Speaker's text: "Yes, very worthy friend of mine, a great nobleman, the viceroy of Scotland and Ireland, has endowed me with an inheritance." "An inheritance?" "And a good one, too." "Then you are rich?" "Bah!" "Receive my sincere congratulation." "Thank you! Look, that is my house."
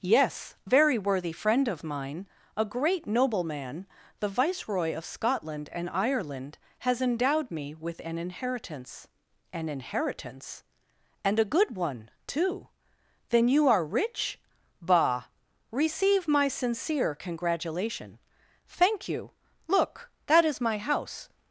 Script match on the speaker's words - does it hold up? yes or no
yes